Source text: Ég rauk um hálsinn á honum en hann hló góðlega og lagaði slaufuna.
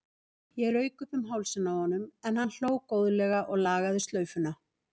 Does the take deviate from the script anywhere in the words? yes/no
yes